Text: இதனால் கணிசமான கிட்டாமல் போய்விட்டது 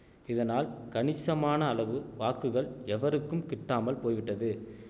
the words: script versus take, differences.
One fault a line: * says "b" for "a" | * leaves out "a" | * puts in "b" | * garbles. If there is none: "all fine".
* puts in "அளவு வாக்குகள் எவருக்கும்"